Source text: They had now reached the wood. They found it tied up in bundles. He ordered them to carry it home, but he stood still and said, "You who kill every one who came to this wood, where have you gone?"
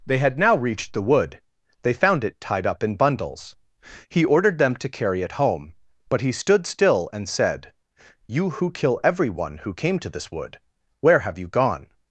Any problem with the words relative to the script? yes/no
no